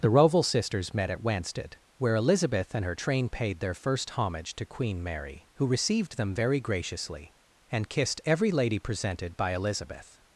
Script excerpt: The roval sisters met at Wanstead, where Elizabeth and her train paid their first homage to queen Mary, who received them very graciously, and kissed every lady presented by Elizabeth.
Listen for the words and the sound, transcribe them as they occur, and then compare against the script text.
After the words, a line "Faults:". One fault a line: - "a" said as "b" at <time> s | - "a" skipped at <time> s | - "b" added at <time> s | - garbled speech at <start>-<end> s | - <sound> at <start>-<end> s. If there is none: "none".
The roval sisters met at Wanstead, where Elizabeth and her train paid their first homage to queen Mary, who received them very graciously, and kissed every lady presented by Elizabeth.
Faults:
none